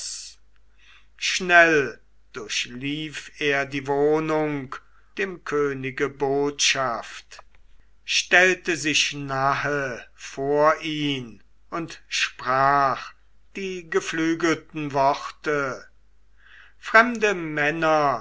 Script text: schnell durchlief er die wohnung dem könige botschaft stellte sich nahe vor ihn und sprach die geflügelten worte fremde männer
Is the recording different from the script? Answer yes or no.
no